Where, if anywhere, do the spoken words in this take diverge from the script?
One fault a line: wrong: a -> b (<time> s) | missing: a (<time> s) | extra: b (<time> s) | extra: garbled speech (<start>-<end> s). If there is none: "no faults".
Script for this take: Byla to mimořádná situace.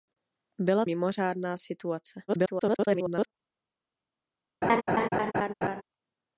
missing: to (0.8 s)
extra: garbled speech (2.3-3.3 s)